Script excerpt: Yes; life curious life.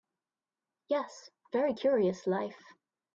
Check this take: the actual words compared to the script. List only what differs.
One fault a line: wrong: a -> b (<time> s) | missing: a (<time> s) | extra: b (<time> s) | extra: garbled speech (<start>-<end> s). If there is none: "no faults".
wrong: life -> very (1.5 s)